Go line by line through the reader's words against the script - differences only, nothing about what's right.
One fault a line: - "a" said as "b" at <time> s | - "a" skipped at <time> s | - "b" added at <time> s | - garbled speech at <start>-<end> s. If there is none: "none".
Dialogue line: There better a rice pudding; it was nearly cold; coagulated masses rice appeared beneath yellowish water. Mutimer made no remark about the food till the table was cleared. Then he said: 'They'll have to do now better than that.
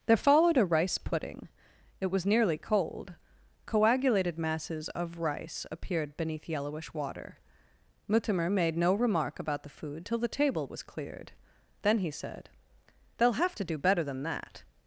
- "better" said as "followed" at 0.2 s
- "of" added at 4.9 s
- "now" skipped at 13.8 s